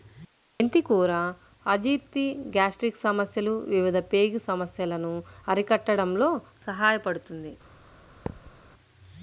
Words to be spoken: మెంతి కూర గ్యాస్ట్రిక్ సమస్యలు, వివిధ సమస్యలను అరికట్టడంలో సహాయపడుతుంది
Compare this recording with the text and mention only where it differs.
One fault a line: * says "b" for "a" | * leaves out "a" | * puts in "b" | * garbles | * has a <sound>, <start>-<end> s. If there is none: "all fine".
* puts in "అజీర్తి"
* puts in "పేగు"
* has a thud, 8.3-8.5 s